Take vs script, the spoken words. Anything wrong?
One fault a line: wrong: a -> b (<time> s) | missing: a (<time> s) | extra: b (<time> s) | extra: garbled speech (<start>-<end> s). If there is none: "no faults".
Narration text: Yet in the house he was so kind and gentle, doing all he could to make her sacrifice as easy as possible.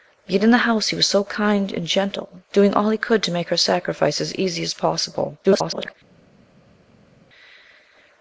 extra: garbled speech (5.4-5.9 s)